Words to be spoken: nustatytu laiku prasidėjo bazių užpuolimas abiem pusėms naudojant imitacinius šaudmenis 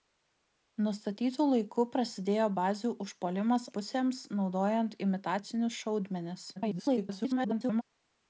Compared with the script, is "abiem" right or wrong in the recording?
wrong